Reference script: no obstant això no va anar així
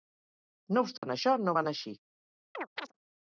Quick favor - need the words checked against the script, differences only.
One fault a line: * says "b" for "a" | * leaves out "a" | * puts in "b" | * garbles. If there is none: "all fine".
all fine